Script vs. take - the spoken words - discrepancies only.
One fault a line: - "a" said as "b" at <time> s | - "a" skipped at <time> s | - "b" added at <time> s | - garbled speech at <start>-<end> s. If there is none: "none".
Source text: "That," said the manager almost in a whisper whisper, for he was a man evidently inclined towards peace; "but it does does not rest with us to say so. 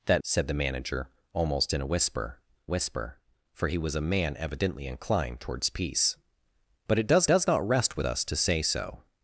none